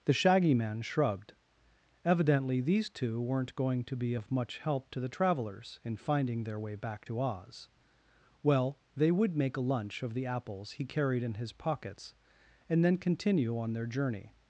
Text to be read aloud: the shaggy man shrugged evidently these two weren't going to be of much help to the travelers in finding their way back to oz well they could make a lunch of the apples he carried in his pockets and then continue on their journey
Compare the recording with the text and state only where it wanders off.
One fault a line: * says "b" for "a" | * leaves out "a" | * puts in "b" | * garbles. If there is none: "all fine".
* says "would" for "could"